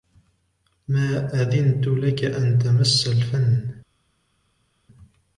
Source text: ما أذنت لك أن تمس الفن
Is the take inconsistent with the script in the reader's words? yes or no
no